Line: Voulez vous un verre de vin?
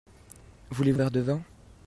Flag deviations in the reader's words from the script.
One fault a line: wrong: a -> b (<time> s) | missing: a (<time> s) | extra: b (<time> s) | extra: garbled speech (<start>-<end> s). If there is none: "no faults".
missing: vous (0.9 s)